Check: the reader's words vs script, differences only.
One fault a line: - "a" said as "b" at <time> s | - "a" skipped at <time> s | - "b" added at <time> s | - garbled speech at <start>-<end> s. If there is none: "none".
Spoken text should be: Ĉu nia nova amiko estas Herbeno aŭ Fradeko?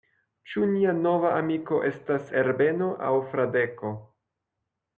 none